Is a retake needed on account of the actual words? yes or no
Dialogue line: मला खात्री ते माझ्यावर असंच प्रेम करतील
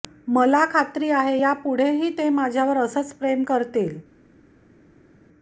yes